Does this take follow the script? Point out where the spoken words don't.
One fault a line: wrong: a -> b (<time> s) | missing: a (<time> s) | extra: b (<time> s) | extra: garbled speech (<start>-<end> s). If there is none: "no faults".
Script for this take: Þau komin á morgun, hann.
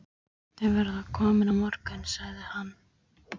extra: verða (0.8 s)
extra: sagði (2.1 s)